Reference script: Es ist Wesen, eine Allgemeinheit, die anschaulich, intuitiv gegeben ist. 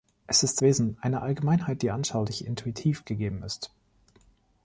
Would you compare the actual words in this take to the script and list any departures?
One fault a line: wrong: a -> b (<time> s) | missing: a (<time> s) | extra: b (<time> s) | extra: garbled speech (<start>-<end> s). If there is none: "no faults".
no faults